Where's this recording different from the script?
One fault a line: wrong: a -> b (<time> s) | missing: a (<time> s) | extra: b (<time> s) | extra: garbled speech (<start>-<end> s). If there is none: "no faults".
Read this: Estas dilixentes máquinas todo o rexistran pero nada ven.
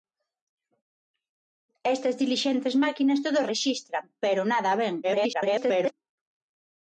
extra: garbled speech (5.0-5.9 s)